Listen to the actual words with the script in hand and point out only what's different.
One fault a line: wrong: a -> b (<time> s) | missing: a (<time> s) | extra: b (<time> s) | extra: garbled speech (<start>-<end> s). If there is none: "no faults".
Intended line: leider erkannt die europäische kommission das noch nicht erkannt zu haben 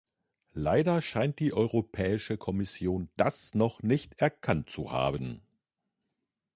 wrong: erkannt -> scheint (1.0 s)